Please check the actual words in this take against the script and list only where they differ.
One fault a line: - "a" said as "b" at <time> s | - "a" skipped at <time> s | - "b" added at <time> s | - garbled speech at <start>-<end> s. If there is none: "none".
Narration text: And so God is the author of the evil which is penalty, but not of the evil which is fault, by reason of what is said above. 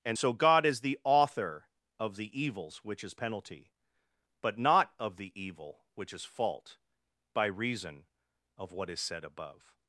- "evil" said as "evils" at 2.4 s